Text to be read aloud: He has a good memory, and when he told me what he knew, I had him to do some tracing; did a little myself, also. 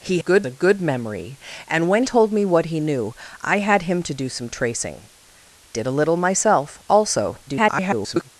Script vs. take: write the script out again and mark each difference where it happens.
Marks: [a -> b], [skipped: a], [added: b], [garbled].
He [has -> good] a good memory, and when [skipped: he] told me what he knew, I had him to do some tracing; did a little myself, also. [garbled]